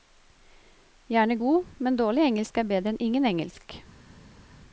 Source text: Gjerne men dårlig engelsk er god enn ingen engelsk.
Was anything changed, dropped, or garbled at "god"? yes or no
yes